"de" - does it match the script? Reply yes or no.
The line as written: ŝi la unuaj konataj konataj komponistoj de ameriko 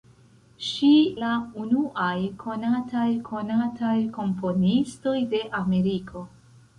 yes